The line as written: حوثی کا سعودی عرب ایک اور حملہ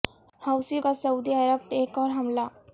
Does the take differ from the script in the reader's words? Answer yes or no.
no